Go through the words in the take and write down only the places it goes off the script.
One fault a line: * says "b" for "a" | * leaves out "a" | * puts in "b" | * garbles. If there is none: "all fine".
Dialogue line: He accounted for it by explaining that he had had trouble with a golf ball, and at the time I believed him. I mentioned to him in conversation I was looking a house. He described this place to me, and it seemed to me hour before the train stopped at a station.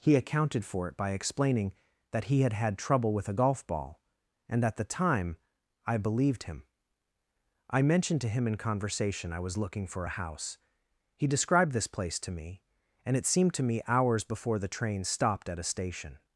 * puts in "for"
* says "hours" for "hour"